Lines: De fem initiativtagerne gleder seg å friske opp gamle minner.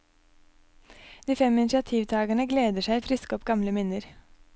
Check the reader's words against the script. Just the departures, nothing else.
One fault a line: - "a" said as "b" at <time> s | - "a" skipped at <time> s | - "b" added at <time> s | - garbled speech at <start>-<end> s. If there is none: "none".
none